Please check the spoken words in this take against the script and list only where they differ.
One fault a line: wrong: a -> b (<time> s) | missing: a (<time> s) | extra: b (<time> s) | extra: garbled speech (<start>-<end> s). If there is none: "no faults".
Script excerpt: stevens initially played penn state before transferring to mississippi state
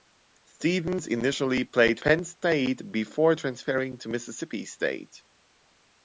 no faults